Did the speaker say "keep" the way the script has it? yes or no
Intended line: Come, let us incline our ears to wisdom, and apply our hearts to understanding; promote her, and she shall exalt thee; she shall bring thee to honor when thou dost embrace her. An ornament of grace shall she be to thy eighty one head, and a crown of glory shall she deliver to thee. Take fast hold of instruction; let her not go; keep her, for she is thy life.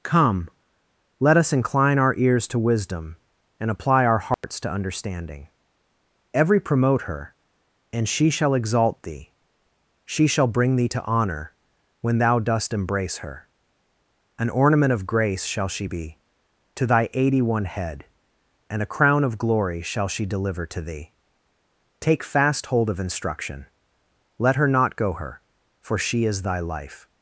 no